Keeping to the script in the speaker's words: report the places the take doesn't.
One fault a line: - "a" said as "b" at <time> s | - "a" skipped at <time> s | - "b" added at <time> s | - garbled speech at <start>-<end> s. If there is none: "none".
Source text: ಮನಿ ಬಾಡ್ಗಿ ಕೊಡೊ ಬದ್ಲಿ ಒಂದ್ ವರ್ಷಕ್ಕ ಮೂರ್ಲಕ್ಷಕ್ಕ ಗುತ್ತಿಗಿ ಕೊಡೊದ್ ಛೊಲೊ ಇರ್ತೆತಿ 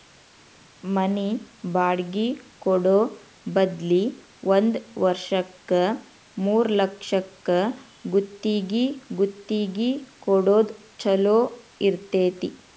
- "ಗುತ್ತಿಗಿ" added at 9.1 s